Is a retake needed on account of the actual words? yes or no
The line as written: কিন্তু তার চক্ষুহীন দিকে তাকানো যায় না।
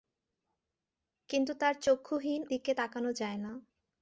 no